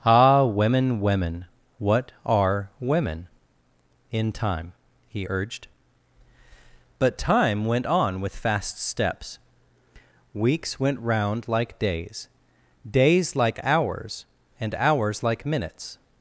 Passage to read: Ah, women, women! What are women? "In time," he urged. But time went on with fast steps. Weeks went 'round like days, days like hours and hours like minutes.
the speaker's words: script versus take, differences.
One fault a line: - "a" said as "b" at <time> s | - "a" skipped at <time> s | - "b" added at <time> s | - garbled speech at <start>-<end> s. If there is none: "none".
none